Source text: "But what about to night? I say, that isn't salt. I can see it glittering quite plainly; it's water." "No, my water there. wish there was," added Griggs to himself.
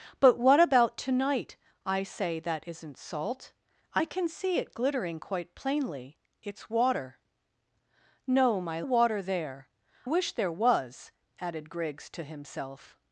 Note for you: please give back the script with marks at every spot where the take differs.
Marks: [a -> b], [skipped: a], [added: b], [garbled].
"But what about to night? I say, that isn't salt. I can see it glittering quite plainly; it's water." "No, my water there. wish there was," added Griggs to himself.